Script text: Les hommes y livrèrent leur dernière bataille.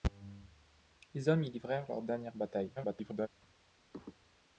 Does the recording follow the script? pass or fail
fail